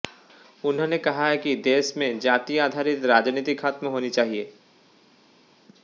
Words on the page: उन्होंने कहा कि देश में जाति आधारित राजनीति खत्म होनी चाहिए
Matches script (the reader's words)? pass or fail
pass